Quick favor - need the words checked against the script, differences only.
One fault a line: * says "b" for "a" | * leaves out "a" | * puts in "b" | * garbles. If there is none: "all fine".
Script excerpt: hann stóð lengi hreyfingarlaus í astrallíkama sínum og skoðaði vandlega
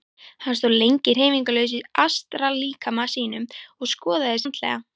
all fine